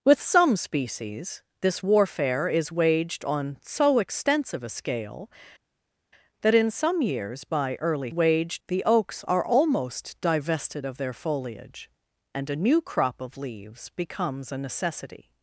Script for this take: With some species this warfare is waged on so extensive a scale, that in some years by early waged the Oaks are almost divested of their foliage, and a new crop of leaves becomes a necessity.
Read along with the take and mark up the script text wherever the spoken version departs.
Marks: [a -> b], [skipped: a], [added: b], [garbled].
With some species this warfare is waged on so extensive a scale, that in some years by early waged the Oaks are almost divested of their foliage, and a new crop of leaves becomes a necessity.